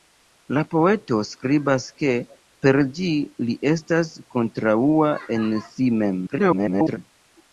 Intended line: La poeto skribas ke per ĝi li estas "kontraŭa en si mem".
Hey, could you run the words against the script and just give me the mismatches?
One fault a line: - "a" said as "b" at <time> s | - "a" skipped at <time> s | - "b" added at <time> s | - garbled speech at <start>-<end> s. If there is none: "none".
- garbled speech at 6.3-7.0 s